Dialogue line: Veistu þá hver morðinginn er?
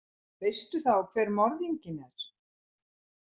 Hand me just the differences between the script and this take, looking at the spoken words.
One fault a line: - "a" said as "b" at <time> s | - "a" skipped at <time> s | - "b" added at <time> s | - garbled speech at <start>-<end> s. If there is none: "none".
none